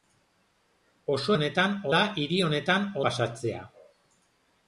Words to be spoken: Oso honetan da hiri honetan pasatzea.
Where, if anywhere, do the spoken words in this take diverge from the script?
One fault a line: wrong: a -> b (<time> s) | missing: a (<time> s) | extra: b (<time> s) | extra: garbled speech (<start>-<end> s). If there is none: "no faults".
no faults